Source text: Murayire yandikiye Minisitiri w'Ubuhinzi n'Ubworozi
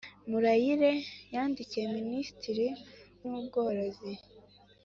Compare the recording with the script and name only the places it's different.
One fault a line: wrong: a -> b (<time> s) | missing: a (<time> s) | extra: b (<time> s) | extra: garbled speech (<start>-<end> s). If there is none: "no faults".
missing: w'Ubuhinzi (2.7 s)